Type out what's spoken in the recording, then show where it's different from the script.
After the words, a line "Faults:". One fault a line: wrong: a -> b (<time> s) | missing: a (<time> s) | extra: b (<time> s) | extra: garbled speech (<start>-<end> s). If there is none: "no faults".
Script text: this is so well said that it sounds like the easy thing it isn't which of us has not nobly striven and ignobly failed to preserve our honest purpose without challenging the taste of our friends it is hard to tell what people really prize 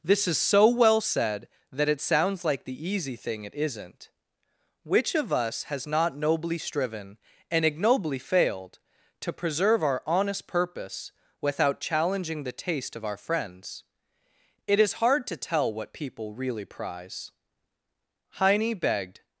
this is so well said that it sounds like the easy thing it isn't which of us has not nobly striven and ignobly failed to preserve our honest purpose without challenging the taste of our friends it is hard to tell what people really prize heine begged
Faults:
extra: heine begged (18.3 s)